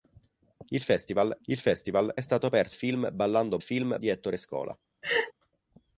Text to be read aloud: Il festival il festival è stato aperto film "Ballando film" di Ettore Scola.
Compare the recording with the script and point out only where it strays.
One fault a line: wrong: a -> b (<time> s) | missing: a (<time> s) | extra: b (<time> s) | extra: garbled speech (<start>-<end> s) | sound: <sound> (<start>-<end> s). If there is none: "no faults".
sound: laugh (5.0-5.3 s)